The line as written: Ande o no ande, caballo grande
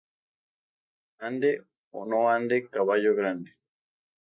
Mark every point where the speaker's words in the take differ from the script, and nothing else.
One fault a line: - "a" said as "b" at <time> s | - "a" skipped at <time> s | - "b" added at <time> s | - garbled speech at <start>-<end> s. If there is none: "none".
none